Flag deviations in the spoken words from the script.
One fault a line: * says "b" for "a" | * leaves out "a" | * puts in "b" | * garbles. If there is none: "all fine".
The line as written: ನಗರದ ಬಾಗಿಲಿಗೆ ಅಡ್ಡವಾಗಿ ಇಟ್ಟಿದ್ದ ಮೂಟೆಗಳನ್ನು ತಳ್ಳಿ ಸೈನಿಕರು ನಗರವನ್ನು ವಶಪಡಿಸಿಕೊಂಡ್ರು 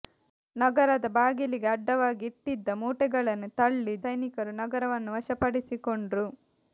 all fine